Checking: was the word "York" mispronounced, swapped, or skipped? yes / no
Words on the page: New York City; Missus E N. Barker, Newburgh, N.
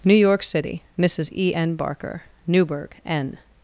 no